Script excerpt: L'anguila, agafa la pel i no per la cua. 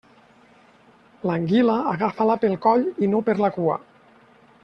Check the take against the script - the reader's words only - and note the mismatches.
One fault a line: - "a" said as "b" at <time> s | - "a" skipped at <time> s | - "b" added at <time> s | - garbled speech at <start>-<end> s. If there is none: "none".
- "coll" added at 2.7 s